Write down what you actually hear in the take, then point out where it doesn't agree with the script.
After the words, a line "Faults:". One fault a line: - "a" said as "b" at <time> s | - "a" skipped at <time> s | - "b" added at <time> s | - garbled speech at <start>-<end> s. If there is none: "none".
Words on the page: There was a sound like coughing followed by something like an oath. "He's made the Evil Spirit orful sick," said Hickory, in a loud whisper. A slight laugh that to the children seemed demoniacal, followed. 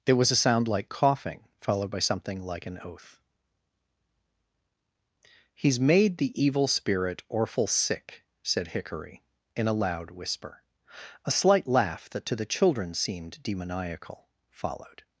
There was a sound like coughing followed by something like an oath. "He's made the Evil Spirit orful sick," said Hickory, in a loud whisper. A slight laugh that to the children seemed demoniacal, followed.
Faults:
none